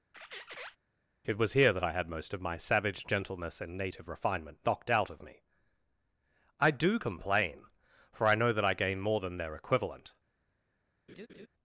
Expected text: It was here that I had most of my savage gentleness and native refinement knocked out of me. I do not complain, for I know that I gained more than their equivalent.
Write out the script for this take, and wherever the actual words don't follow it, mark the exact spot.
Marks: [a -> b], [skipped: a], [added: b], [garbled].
It was here that I had most of my savage gentleness and native refinement knocked out of me. I do [skipped: not] complain, for I know that I [gained -> gain] more than their equivalent.